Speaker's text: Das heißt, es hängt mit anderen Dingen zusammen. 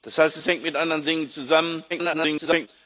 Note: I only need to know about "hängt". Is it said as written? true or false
true